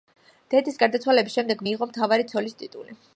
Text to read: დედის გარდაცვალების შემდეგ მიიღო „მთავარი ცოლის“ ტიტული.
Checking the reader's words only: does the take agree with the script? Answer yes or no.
yes